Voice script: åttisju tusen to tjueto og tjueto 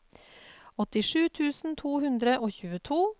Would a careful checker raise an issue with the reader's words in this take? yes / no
yes